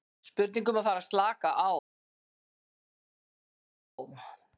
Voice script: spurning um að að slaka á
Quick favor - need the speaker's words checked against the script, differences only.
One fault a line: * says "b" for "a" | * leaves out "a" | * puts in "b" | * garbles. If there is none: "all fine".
* puts in "fara"